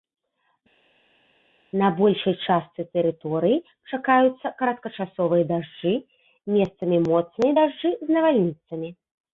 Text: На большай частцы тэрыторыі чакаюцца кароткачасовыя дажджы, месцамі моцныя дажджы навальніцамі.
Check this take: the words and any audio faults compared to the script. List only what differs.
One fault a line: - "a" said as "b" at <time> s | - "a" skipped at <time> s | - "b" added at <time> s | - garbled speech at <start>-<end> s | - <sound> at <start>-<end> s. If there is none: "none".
- "з" added at 8.1 s